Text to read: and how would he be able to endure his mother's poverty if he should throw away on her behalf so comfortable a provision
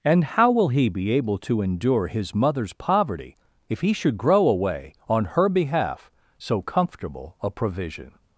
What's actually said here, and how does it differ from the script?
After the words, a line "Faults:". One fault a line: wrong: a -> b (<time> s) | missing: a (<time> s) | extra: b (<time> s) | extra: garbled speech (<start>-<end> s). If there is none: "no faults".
and how will he be able to endure his mother's poverty if he should grow away on her behalf so comfortable a provision
Faults:
wrong: would -> will (0.5 s)
wrong: throw -> grow (4.2 s)